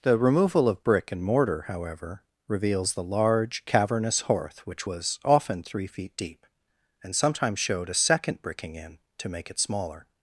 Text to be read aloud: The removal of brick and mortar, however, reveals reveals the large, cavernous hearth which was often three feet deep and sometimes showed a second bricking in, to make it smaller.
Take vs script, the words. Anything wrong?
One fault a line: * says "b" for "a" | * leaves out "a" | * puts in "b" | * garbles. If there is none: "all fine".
* leaves out "reveals"